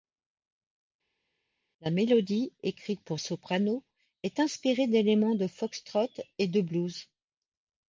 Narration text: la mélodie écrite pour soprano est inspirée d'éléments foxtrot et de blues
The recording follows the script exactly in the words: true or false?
false